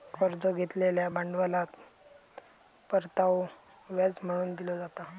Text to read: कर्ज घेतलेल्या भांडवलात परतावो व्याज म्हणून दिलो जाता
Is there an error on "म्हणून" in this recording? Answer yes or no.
no